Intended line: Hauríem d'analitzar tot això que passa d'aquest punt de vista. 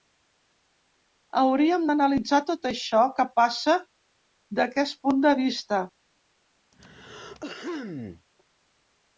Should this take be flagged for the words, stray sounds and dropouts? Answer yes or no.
yes